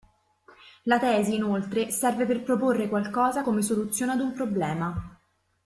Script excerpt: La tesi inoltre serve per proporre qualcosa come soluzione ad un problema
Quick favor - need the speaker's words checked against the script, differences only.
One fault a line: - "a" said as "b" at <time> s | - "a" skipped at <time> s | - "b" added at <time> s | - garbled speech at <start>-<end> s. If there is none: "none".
none